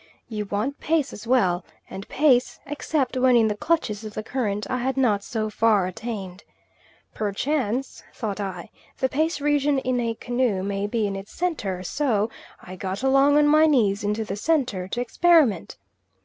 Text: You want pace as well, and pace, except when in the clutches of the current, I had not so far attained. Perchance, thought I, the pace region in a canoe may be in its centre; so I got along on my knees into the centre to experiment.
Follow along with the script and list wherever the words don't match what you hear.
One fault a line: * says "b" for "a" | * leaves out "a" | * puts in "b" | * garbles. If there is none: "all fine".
all fine